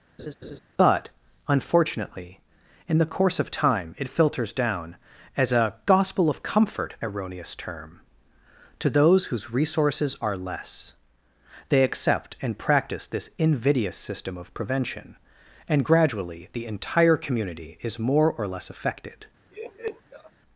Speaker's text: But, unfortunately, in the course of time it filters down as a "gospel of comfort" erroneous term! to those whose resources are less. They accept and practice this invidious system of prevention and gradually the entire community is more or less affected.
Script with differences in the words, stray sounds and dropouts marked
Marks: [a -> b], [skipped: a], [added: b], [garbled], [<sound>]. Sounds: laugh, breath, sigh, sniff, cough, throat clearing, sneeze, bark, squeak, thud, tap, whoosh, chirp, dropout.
[laugh] But, unfortunately, in the course of time it filters down as a "gospel of comfort" erroneous term! to those whose resources are less. They accept and practice this invidious system of prevention and gradually the entire community is more or less affected. [laugh]